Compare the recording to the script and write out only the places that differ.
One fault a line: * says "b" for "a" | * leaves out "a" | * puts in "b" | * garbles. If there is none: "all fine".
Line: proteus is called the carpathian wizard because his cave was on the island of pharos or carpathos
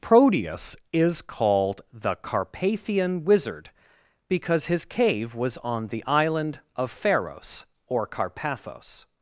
all fine